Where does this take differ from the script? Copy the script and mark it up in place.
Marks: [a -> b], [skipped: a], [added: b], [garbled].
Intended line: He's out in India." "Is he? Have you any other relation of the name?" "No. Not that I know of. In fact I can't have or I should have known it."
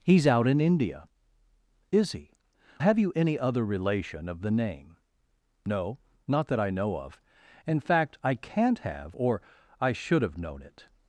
He's out in India." "Is he? Have you any other relation of the name?" "No. Not that I know of. In fact I can't have or I should have known it."